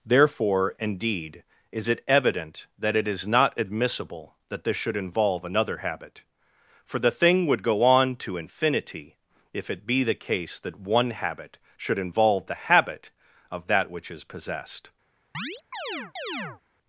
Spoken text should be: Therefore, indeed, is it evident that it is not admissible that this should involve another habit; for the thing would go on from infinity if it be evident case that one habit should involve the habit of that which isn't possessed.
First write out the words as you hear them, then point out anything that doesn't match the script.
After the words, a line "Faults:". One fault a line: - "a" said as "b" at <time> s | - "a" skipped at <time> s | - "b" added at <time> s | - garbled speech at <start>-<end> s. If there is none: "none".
Therefore, indeed, is it evident that it is not admissible that this should involve another habit; for the thing would go on to infinity if it be the case that one habit should involve the habit of that which is possessed.
Faults:
- "from" said as "to" at 8.2 s
- "evident" said as "the" at 10.0 s
- "isn't" said as "is" at 14.1 s